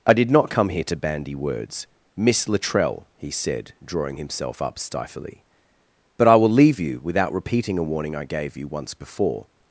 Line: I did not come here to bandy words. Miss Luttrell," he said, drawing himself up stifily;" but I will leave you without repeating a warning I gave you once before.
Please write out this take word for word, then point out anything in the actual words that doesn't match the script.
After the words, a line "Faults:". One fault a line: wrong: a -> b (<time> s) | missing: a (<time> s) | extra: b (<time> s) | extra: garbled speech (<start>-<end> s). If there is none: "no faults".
I did not come here to bandy words. Miss Luttrell," he said, drawing himself up stifily;" but I will leave you without repeating a warning I gave you once before.
Faults:
no faults